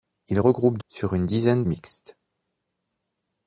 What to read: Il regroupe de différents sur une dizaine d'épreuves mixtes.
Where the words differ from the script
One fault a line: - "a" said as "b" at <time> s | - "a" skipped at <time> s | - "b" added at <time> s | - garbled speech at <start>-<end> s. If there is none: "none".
- "de différents" skipped at 0.8 s
- "d'épreuves" skipped at 1.6 s